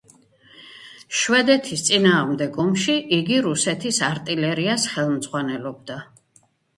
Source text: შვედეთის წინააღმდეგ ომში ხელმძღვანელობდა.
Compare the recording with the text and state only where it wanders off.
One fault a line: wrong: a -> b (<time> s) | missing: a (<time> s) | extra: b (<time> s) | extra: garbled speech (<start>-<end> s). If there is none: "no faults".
extra: იგი რუსეთის არტილერიას (3.2 s)